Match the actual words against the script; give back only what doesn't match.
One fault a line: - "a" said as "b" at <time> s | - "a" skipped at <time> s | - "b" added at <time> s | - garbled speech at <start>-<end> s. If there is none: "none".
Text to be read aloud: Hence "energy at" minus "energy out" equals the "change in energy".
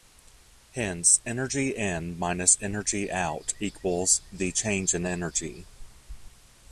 - "at" said as "in" at 1.8 s